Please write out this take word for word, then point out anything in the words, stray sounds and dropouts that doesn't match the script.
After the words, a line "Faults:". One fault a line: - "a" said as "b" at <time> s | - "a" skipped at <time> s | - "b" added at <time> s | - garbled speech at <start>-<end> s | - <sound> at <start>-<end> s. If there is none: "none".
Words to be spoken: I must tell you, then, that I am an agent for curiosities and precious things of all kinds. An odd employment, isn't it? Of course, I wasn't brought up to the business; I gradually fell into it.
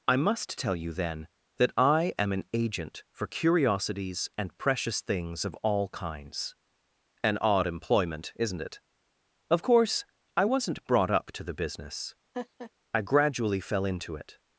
I must tell you, then, that I am an agent for curiosities and precious things of all kinds. An odd employment, isn't it? Of course, I wasn't brought up to the business; I gradually fell into it.
Faults:
- laugh at 12.3-12.7 s